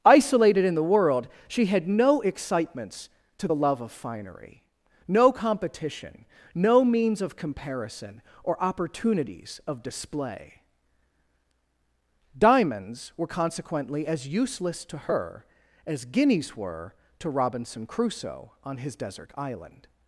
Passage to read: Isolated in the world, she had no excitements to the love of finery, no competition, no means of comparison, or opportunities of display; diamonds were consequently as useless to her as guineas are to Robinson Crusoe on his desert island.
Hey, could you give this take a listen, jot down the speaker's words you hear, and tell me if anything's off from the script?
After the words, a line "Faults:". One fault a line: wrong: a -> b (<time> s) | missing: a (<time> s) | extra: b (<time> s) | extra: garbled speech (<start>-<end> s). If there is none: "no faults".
Isolated in the world, she had no excitements to the love of finery, no competition, no means of comparison, or opportunities of display; diamonds were consequently as useless to her as guineas were to Robinson Crusoe on his desert island.
Faults:
wrong: are -> were (16.6 s)